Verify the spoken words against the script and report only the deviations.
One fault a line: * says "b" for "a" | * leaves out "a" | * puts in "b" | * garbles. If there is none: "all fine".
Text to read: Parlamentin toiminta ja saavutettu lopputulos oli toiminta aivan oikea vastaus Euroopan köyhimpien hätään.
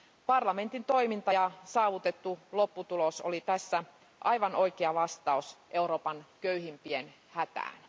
* says "tässä" for "toiminta"